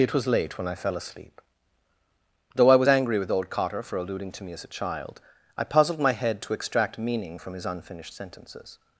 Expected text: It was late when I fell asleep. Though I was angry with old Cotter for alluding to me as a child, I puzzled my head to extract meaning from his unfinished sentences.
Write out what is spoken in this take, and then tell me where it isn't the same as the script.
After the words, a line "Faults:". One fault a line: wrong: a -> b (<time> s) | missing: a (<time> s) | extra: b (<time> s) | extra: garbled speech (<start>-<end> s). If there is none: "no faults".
It was late when I fell asleep. Though I was angry with old Cotter for alluding to me as a child, I puzzled my head to extract meaning from his unfinished sentences.
Faults:
no faults